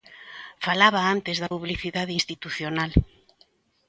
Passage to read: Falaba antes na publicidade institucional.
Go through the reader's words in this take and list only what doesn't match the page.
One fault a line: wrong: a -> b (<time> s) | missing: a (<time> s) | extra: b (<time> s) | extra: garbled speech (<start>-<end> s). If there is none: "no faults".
wrong: na -> da (1.4 s)